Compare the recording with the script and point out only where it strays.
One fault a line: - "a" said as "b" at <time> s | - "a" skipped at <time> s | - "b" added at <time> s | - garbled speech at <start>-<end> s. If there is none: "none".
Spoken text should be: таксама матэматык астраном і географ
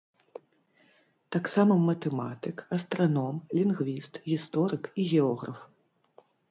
- "лінгвіст гісторык" added at 3.6 s